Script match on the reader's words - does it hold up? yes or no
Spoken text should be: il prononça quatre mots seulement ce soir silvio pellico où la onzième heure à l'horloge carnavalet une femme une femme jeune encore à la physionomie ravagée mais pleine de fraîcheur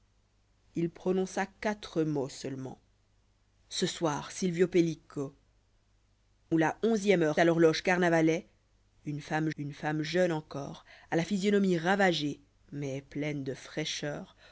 yes